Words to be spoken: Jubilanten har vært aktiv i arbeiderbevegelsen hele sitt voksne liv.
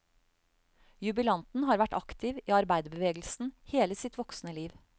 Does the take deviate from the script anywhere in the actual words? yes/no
no